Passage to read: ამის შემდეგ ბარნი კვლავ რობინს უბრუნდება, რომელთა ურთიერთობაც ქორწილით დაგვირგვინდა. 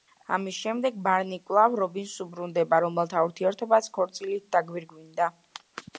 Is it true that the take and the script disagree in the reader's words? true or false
false